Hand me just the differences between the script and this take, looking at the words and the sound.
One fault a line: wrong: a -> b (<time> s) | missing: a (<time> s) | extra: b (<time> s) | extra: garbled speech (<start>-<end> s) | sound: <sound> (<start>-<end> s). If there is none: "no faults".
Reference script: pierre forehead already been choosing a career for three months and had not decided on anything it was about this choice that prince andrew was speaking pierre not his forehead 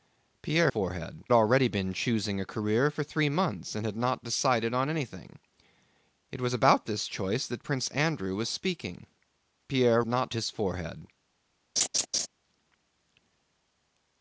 sound: laugh (11.8-12.3 s)